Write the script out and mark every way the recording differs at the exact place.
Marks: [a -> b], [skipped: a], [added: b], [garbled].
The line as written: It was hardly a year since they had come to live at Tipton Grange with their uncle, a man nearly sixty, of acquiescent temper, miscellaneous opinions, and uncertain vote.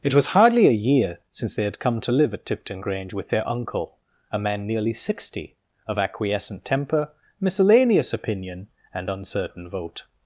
It was hardly a year since they had come to live at Tipton Grange with their uncle, a man nearly sixty, of acquiescent temper, miscellaneous [opinions, -> opinion] and uncertain vote.